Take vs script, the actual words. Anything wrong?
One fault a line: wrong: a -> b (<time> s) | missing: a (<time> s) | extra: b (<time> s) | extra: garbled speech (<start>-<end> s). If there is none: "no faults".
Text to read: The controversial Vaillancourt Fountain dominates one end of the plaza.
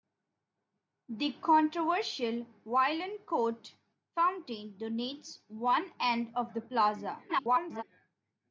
extra: garbled speech (7.3-7.8 s)